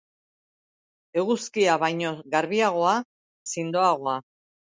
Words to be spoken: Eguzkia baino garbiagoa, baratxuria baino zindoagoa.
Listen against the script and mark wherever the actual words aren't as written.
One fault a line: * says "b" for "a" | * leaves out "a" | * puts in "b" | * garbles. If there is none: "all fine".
* leaves out "baratxuria baino"